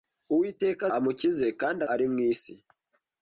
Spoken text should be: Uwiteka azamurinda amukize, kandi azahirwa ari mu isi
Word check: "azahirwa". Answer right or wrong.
wrong